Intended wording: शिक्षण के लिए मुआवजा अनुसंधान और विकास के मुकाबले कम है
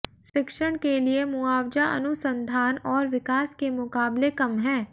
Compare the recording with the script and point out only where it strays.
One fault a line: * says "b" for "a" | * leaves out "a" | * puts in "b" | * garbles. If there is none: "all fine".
all fine